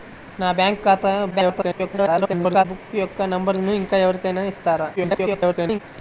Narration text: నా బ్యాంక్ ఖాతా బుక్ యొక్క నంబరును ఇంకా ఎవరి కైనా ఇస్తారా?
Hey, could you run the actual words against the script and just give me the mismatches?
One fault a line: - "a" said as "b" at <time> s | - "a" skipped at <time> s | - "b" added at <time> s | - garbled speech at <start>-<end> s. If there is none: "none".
- garbled speech at 1.3-2.6 s
- garbled speech at 5.0-5.8 s